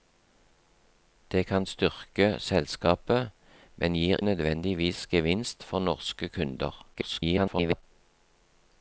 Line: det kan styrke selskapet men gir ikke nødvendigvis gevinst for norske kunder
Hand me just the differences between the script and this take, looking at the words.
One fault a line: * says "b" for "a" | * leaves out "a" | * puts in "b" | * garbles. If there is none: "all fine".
* leaves out "ikke"
* garbles